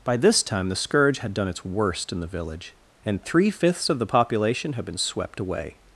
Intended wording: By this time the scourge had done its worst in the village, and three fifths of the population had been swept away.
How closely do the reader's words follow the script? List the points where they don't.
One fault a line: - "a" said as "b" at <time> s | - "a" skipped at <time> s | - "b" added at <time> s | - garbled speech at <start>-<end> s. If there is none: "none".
none